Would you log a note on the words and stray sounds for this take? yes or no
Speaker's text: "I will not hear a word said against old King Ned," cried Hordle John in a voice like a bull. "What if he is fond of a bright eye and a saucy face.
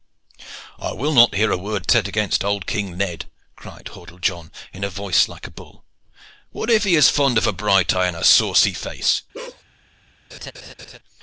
yes